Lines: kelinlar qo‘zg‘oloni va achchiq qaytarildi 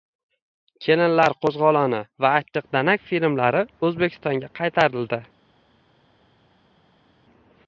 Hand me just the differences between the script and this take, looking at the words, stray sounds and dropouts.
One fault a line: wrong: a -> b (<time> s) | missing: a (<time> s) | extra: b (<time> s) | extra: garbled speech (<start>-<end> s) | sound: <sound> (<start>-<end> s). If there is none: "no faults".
extra: danak filmlari o‘zbekistonga (2.8 s)